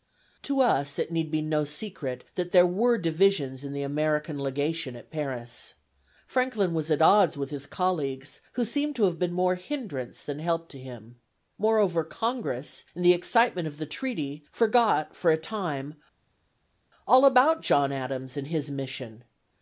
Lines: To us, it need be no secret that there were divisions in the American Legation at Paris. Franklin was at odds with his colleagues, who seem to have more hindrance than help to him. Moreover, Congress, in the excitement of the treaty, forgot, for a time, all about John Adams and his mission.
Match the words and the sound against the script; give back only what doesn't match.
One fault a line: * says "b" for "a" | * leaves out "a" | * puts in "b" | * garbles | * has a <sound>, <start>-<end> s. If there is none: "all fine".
* puts in "been"